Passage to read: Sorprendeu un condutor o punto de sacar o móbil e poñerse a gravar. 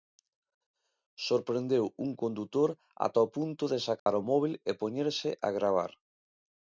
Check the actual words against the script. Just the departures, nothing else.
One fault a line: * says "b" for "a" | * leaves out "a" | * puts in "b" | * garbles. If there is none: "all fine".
* puts in "ata"